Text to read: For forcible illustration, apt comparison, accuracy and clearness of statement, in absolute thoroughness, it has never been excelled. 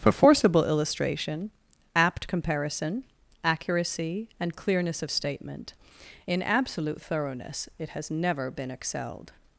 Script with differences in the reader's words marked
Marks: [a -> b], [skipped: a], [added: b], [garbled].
For forcible illustration, apt comparison, accuracy and clearness of statement, in absolute thoroughness, it has never been excelled.